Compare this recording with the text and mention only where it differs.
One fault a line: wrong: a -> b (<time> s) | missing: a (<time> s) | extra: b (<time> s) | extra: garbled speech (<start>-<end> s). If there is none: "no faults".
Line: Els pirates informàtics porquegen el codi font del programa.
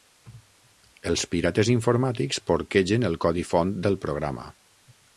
no faults